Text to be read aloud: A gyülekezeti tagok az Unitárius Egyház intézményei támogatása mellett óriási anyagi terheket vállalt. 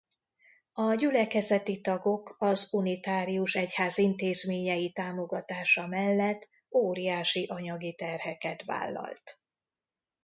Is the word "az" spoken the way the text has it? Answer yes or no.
yes